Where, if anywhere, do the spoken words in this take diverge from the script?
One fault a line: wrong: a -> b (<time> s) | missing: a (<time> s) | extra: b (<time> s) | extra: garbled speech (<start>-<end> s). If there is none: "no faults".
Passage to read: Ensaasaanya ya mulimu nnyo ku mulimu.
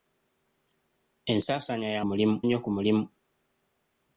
no faults